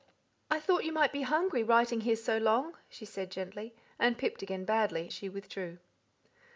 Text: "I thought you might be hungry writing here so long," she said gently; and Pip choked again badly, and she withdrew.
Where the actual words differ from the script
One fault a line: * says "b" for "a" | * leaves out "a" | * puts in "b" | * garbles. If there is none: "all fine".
* leaves out "choked"
* leaves out "and"